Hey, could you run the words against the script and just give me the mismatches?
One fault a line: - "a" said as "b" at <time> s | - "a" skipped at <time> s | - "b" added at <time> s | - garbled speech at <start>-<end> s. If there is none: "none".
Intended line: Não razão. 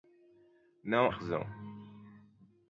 none